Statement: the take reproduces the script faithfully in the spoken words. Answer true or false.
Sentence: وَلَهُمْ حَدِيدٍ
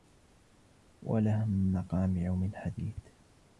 false